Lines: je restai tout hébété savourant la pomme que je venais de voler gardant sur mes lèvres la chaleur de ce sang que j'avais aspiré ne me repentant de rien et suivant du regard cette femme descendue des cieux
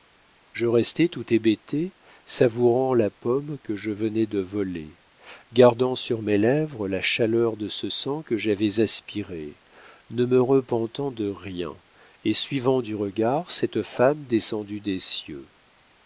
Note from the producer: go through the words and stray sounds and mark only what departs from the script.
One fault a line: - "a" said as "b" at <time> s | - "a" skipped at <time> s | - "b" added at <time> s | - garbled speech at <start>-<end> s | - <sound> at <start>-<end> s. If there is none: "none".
none